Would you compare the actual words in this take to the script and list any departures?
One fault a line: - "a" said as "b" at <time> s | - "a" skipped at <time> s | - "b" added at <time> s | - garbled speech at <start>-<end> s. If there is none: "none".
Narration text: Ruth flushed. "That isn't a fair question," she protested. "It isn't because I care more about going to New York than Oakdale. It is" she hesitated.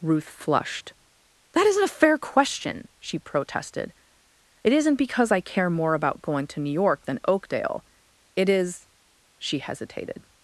none